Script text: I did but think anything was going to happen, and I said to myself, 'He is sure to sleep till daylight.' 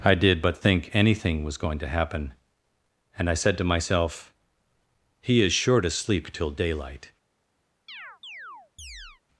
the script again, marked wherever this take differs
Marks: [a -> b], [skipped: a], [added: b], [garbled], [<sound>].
I did but think anything was going to happen, and I said to myself, 'He is sure to sleep till daylight.' [chirp]